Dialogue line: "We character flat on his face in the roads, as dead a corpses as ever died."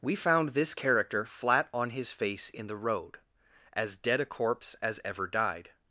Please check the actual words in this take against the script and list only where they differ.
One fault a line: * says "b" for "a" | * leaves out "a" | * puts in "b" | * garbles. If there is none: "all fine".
* puts in "found this"
* says "road" for "roads"
* says "corpse" for "corpses"